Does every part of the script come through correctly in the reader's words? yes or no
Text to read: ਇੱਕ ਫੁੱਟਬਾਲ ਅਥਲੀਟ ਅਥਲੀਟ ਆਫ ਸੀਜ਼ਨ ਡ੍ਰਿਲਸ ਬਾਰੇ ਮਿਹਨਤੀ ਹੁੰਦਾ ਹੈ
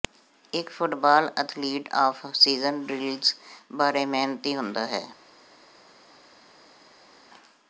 no